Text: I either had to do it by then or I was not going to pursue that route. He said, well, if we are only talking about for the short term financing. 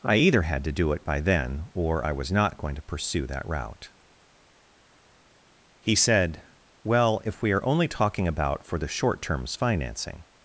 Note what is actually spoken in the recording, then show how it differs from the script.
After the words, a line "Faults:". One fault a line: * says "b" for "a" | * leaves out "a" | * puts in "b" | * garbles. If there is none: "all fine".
I either had to do it by then or I was not going to pursue that route. He said, well, if we are only talking about for the short terms financing.
Faults:
* says "terms" for "term"